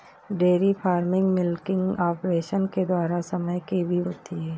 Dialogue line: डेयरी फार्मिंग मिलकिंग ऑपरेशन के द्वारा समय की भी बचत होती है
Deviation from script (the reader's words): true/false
true